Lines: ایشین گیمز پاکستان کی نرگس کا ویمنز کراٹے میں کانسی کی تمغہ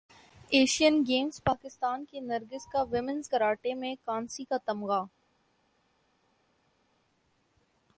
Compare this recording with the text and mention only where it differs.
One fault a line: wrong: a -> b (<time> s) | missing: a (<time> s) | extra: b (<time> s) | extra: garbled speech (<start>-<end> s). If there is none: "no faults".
wrong: کی -> کا (4.4 s)